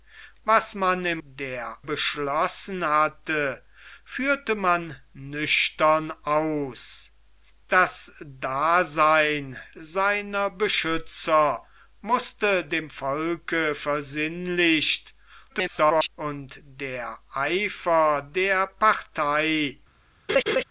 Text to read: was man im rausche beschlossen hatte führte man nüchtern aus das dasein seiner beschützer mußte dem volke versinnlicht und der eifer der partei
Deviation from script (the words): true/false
true